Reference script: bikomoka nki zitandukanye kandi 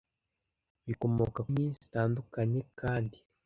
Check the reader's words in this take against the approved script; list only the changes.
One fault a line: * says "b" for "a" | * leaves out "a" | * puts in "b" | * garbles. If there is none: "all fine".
all fine